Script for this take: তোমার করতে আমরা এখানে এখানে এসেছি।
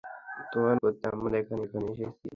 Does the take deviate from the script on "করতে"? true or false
false